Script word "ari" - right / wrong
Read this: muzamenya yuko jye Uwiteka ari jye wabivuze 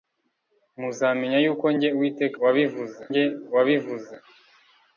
wrong